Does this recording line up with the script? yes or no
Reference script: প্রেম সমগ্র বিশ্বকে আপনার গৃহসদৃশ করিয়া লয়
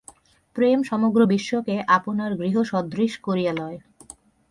yes